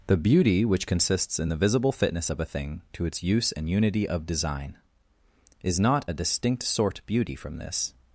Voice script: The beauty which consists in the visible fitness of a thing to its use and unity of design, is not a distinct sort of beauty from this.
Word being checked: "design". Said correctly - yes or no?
yes